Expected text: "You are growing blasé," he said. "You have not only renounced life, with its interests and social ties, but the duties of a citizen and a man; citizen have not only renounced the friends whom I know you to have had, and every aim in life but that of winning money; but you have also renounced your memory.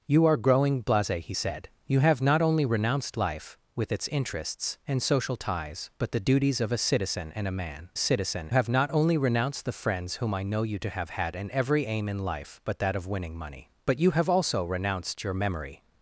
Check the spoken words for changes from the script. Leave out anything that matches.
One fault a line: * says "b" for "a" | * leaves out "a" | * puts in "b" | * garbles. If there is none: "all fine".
all fine